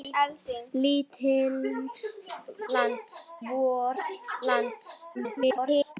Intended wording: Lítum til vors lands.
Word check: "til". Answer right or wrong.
wrong